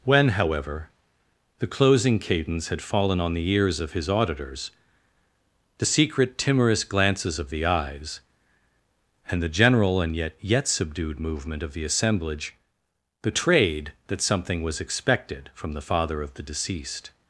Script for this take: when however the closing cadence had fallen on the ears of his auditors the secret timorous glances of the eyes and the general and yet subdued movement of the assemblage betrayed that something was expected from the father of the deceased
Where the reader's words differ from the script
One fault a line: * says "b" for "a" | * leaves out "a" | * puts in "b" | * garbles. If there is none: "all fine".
* puts in "yet"